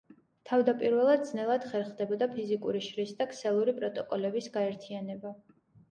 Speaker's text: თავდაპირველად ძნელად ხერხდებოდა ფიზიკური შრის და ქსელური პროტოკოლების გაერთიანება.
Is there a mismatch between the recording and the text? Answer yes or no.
no